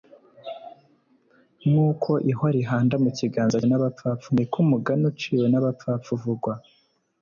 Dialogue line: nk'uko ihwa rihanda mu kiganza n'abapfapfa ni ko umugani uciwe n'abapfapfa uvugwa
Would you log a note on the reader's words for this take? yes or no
no